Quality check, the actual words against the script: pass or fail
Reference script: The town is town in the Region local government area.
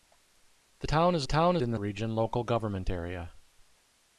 pass